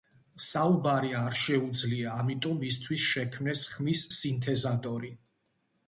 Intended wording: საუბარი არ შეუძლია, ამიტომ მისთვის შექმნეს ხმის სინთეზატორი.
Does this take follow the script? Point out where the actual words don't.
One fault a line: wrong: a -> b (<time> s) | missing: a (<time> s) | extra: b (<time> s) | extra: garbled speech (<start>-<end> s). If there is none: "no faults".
no faults